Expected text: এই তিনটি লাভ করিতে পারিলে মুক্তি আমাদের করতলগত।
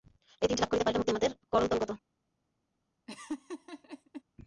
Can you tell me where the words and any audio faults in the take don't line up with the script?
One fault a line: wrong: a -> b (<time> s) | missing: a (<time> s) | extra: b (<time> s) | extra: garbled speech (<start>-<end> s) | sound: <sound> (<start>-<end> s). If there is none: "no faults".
sound: laugh (3.1-4.2 s)